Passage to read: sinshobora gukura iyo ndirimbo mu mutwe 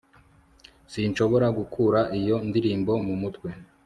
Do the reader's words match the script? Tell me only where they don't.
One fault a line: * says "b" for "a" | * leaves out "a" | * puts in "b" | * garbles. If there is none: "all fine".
all fine